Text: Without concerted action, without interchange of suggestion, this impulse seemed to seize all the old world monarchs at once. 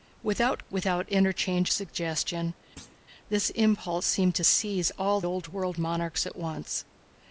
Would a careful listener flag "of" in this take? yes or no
yes